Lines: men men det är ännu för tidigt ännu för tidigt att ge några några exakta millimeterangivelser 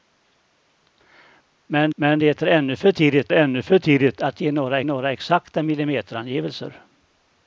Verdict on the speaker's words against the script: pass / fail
pass